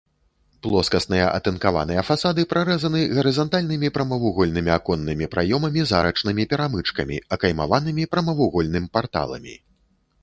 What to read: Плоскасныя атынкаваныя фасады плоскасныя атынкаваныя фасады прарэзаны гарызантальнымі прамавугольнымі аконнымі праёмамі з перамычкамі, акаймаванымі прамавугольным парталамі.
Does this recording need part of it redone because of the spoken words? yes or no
yes